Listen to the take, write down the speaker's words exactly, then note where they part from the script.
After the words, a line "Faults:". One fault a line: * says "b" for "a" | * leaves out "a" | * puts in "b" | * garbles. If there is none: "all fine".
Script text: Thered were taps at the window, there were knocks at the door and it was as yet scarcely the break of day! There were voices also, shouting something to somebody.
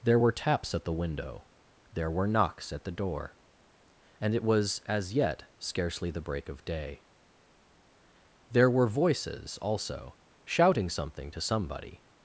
There were taps at the window, there were knocks at the door and it was as yet scarcely the break of day! There were voices also, shouting something to somebody.
Faults:
* says "There" for "Thered"